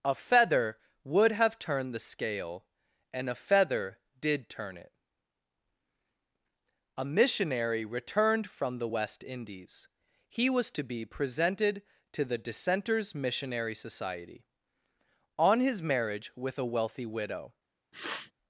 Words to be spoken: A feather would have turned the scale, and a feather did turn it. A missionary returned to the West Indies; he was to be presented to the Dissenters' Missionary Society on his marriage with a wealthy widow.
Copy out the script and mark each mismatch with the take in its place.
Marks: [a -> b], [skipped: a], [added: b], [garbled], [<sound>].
A feather would have turned the scale, and a feather did turn it. A missionary returned [to -> from] the West Indies; he was to be presented to the Dissenters' Missionary Society on his marriage with a wealthy widow. [sniff]